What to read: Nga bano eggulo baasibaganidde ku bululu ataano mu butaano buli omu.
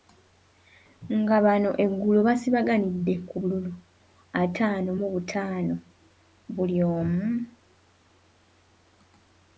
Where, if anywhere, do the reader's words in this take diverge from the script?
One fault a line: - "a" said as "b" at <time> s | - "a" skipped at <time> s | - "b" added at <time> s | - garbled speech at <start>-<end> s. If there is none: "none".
none